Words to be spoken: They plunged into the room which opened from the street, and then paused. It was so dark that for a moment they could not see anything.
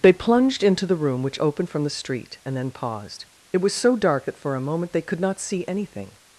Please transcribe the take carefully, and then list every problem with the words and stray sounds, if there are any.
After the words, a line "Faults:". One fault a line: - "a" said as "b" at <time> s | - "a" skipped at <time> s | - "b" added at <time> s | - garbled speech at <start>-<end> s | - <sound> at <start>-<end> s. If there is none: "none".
They plunged into the room which opened from the street, and then paused. It was so dark that for a moment they could not see anything.
Faults:
none